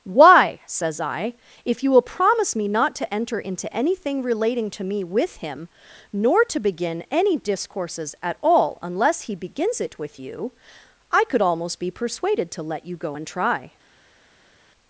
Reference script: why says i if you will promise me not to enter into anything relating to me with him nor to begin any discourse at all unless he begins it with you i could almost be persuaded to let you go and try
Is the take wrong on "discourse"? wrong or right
wrong